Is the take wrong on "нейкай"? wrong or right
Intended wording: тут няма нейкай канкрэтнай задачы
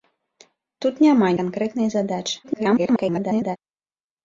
wrong